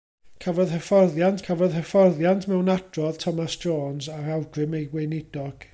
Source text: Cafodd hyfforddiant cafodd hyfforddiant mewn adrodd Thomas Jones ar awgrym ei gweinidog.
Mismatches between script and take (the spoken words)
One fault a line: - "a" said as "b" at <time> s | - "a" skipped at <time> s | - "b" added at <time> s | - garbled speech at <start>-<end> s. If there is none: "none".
none